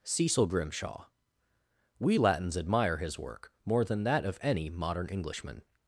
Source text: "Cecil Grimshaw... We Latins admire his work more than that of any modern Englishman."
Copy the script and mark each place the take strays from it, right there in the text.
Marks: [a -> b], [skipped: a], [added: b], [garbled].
"Cecil Grimshaw... We Latins admire his work more than that of any modern Englishman."